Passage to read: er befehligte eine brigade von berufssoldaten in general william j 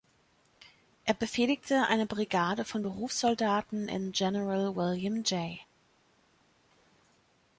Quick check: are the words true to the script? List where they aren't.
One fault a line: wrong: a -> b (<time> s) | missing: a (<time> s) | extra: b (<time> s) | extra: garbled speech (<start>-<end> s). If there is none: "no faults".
no faults